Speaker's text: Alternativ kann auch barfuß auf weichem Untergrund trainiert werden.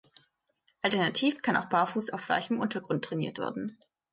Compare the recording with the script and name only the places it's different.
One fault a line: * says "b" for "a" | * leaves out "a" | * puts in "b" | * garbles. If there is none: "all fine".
all fine